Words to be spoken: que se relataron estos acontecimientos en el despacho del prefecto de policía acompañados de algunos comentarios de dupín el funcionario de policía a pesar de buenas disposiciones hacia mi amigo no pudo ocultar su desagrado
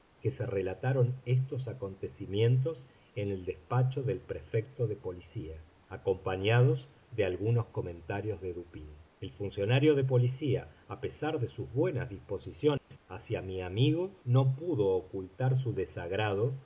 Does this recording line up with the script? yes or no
no